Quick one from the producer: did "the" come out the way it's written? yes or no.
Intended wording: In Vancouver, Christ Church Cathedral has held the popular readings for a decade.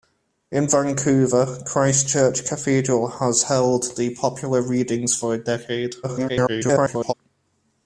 yes